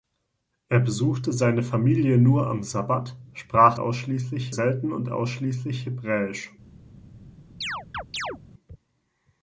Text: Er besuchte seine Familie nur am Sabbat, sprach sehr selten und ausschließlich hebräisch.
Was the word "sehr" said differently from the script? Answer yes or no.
yes